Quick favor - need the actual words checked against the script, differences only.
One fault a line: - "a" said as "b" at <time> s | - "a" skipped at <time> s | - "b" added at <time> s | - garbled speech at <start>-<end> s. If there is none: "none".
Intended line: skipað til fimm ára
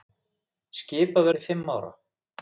none